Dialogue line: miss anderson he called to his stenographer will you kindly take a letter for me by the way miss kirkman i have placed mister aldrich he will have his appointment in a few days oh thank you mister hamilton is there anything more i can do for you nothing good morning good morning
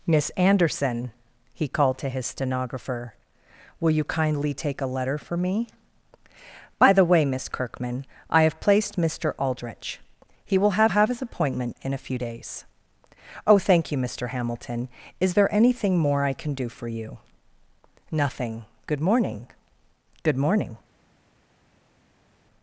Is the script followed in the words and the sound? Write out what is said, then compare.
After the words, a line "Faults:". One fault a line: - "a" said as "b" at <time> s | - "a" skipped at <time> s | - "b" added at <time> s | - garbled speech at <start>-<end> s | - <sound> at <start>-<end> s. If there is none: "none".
miss anderson he called to his stenographer will you kindly take a letter for me by the way miss kirkman i have placed mister aldrich he will have have his appointment in a few days oh thank you mister hamilton is there anything more i can do for you nothing good morning good morning
Faults:
- "have" added at 10.9 s